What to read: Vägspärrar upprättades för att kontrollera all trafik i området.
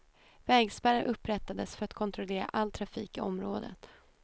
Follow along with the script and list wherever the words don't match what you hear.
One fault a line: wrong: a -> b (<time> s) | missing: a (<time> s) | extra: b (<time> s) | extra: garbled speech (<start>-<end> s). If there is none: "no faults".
no faults